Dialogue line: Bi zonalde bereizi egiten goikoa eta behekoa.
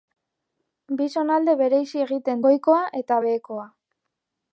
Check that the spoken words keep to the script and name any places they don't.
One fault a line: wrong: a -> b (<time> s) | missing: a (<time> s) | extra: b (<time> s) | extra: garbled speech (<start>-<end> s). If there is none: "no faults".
no faults